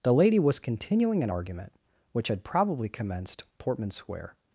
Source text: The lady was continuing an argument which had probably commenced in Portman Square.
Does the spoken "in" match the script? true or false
false